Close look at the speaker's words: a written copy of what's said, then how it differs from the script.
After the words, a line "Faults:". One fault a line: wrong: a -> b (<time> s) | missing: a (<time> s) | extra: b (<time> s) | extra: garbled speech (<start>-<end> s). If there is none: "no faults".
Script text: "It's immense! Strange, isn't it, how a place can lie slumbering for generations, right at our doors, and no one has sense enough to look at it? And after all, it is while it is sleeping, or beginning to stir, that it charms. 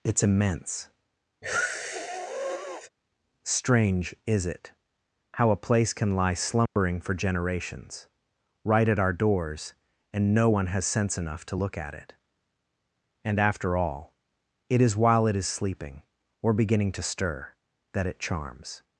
"It's immense! Strange, is it, how a place can lie slumbering for generations, right at our doors, and no one has sense enough to look at it? And after all, it is while it is sleeping, or beginning to stir, that it charms.
Faults:
wrong: isn't -> is (4.3 s)